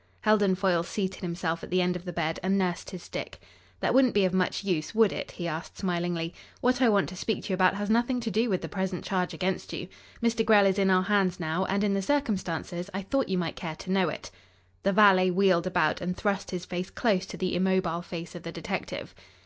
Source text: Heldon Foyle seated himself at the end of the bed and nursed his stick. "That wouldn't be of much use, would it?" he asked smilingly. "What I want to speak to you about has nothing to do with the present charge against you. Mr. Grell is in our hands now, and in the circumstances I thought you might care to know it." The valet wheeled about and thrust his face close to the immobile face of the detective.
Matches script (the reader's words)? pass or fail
pass